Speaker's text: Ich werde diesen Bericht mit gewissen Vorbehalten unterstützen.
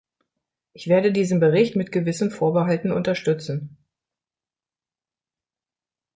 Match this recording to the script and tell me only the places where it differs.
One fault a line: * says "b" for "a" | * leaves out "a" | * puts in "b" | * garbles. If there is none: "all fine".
all fine